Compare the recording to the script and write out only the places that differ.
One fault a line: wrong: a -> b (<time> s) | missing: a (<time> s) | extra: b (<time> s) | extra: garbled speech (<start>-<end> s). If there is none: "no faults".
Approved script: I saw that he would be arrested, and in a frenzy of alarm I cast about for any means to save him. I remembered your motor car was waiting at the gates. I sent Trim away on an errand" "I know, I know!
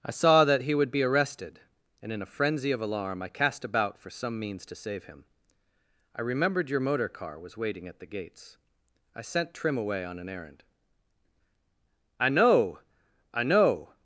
wrong: any -> some (4.1 s)